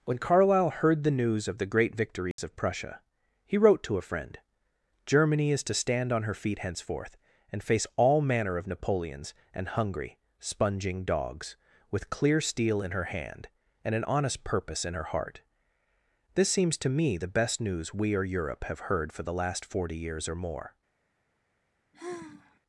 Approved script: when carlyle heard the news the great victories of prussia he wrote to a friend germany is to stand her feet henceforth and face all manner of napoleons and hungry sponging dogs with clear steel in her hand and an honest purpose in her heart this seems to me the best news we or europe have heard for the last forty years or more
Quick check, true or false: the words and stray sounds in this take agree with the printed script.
false